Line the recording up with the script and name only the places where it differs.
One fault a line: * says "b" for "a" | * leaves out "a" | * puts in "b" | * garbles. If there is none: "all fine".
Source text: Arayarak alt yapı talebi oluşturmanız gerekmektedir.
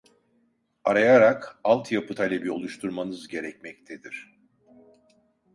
all fine